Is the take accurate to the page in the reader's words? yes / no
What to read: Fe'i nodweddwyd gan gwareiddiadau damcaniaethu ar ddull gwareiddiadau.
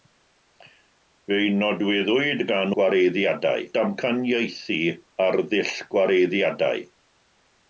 yes